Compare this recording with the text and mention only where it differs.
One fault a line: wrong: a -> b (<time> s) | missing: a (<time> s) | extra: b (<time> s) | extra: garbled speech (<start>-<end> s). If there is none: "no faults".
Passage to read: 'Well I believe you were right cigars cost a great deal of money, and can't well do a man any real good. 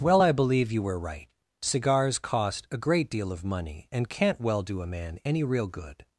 no faults